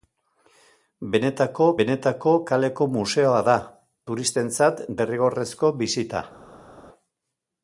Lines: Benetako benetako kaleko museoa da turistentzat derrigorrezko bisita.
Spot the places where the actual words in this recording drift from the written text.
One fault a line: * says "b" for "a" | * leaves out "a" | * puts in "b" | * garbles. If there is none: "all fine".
all fine